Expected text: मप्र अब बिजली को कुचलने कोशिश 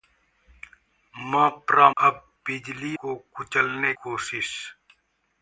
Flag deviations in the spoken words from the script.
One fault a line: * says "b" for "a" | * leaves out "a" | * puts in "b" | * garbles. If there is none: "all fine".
all fine